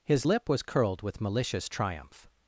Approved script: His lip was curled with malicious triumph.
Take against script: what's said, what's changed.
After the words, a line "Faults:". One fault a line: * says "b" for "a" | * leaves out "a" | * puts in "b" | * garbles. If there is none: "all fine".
His lip was curled with malicious triumph.
Faults:
all fine